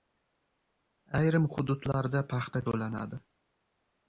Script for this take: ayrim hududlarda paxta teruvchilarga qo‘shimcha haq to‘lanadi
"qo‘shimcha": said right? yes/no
no